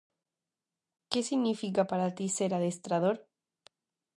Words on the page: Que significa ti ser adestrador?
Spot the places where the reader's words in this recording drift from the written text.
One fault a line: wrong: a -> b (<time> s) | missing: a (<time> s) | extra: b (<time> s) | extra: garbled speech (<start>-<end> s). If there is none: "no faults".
extra: para (1.9 s)